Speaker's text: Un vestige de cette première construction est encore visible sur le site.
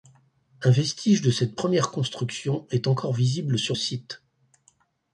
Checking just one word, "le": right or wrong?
wrong